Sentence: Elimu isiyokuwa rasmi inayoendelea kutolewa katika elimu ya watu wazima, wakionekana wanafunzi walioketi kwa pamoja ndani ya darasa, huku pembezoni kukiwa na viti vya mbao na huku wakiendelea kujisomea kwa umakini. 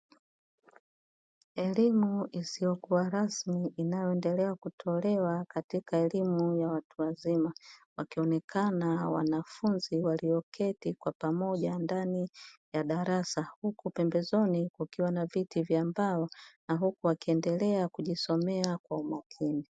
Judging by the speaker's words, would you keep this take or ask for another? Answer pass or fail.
pass